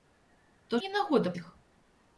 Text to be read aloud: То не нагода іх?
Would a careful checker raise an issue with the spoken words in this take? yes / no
no